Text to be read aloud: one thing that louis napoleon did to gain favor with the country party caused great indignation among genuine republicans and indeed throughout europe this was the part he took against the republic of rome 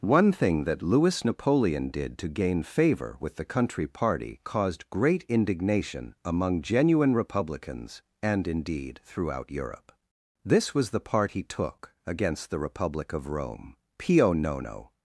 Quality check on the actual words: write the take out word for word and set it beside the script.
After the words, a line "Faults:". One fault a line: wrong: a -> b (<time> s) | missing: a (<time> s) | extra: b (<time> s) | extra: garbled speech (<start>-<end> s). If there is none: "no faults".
one thing that louis napoleon did to gain favor with the country party caused great indignation among genuine republicans and indeed throughout europe this was the part he took against the republic of rome pio nono
Faults:
extra: pio nono (14.0 s)